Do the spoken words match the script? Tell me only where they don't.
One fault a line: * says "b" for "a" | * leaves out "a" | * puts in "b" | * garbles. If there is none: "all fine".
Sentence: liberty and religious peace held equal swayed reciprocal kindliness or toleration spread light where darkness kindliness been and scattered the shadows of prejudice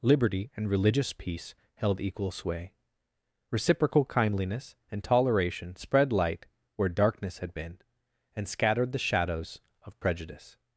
* says "sway" for "swayed"
* says "and" for "or"
* says "had" for "kindliness"